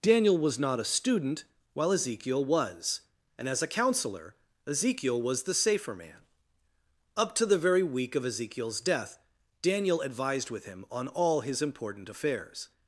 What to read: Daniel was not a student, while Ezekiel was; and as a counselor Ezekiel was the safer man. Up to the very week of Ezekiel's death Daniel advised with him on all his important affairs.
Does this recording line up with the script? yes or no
yes